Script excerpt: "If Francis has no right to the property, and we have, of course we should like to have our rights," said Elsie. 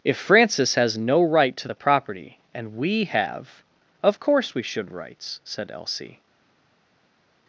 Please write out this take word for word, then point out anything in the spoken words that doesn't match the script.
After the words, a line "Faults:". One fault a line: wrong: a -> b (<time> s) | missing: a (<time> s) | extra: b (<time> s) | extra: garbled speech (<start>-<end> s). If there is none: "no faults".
"If Francis has no right to the property, and we have, of course we should rights," said Elsie.
Faults:
missing: like to have our (4.9 s)